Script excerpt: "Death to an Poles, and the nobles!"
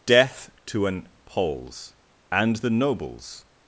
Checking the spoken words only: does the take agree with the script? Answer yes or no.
yes